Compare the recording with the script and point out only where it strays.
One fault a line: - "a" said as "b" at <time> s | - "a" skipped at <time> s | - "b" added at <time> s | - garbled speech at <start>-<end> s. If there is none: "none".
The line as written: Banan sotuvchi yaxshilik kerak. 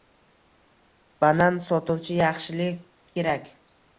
none